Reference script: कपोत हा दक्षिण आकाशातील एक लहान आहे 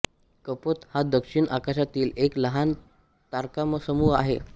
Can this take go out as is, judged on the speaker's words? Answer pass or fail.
fail